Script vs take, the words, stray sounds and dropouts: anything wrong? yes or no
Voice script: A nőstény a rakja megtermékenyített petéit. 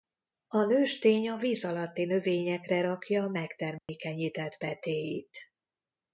yes